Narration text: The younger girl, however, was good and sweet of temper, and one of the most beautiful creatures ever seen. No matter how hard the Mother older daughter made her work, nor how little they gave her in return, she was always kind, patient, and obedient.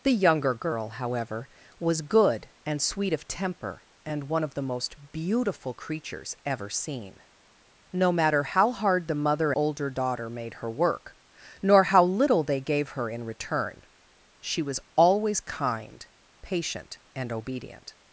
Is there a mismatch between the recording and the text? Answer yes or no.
no